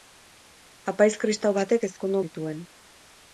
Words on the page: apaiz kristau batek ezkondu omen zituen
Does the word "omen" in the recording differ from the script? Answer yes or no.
yes